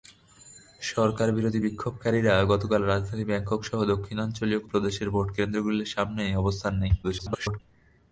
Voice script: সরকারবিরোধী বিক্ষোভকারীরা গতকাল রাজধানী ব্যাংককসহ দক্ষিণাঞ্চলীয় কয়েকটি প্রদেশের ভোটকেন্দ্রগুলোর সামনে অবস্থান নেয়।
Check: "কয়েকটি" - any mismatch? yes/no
yes